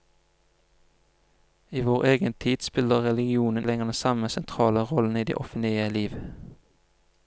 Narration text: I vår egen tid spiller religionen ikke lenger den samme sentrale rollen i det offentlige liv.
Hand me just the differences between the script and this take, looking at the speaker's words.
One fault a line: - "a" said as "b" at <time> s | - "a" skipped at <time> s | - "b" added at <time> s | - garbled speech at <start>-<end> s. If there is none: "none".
- "ikke" skipped at 3.7 s